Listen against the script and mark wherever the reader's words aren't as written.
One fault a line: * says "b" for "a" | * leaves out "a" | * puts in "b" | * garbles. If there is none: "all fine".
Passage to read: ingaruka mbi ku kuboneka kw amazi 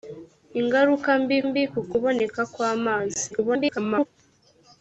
* puts in "mbi"
* garbles